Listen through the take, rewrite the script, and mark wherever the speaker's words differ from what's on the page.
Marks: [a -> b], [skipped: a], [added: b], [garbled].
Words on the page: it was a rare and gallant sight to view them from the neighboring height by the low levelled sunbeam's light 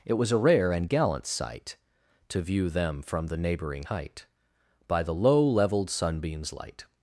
it was a rare and gallant sight to view them from the neighboring height by the low levelled sunbeam's light